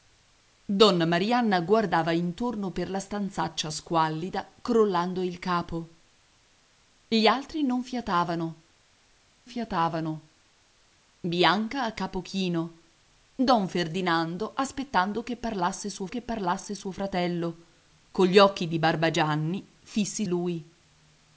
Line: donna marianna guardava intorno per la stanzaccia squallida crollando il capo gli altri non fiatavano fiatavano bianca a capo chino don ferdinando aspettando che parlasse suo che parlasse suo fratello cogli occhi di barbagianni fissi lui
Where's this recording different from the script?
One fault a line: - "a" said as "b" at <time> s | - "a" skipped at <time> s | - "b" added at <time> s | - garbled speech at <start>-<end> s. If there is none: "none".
none